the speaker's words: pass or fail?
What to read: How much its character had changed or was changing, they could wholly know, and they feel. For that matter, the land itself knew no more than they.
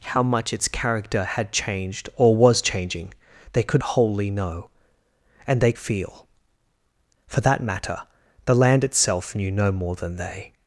pass